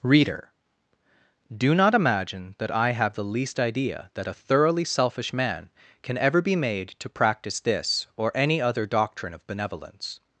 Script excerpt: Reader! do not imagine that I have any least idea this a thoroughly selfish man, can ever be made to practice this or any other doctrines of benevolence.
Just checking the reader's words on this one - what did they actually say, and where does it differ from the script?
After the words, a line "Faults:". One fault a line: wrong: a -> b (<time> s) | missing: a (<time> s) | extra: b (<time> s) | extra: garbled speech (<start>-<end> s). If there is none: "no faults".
Reader! do not imagine that I have the least idea that a thoroughly selfish man, can ever be made to practice this or any other doctrine of benevolence.
Faults:
wrong: any -> the (3.1 s)
wrong: this -> that (4.1 s)
wrong: doctrines -> doctrine (8.8 s)